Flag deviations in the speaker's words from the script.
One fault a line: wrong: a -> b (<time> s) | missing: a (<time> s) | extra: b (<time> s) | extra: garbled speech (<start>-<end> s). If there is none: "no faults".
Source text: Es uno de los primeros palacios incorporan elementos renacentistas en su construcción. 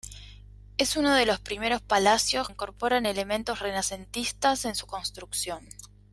no faults